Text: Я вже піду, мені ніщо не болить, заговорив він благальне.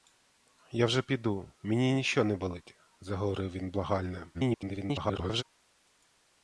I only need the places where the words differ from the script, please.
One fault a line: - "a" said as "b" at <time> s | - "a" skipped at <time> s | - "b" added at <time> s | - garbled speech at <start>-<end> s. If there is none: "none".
- garbled speech at 4.3-5.4 s